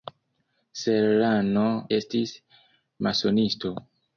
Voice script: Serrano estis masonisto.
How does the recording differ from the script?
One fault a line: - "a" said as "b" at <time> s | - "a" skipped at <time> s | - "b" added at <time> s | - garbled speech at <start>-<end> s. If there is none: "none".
none